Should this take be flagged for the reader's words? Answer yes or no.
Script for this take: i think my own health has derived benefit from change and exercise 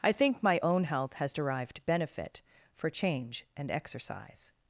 yes